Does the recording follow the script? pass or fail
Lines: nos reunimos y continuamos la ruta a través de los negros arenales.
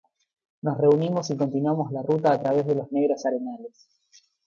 pass